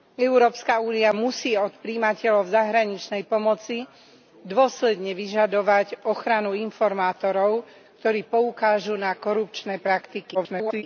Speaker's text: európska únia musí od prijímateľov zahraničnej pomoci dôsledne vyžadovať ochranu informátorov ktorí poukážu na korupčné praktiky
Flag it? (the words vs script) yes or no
yes